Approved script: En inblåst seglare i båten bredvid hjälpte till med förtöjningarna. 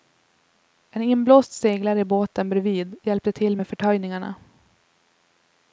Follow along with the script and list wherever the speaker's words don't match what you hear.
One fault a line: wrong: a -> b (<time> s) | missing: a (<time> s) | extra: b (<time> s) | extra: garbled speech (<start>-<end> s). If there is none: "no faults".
no faults